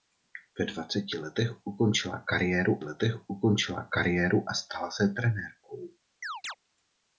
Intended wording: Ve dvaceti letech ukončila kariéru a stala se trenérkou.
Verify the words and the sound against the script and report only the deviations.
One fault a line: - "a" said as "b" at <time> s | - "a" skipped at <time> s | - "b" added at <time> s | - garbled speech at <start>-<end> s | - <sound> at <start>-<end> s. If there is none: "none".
- "letech ukončila kariéru" added at 2.8 s
- chirp at 6.2-6.6 s